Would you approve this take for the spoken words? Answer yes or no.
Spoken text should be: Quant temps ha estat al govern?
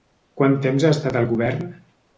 yes